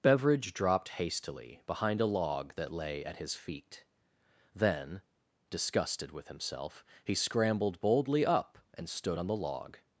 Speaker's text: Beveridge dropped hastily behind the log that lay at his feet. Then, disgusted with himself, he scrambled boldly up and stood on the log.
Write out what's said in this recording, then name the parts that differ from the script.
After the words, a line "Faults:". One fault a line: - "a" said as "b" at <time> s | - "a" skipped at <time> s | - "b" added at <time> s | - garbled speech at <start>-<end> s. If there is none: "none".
Beveridge dropped hastily behind a log that lay at his feet. Then, disgusted with himself, he scrambled boldly up and stood on the log.
Faults:
- "the" said as "a" at 2.0 s